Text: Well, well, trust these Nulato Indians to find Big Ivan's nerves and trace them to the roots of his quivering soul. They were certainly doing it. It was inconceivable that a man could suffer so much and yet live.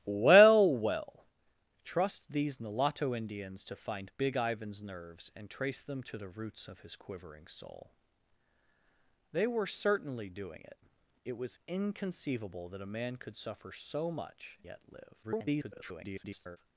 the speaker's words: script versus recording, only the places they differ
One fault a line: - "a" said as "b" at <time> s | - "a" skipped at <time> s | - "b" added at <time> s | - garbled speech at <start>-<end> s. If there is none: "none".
- "and" skipped at 14.6 s
- garbled speech at 15.2-16.6 s